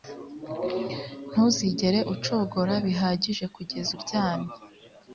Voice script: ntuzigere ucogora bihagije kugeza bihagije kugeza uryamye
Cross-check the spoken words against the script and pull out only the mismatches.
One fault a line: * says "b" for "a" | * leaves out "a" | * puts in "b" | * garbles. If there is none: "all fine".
* leaves out "bihagije kugeza"